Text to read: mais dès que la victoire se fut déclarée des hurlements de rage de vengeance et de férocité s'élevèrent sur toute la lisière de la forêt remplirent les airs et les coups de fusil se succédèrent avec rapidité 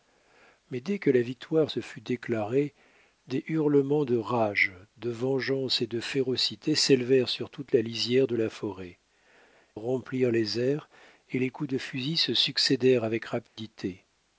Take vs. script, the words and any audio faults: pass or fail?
fail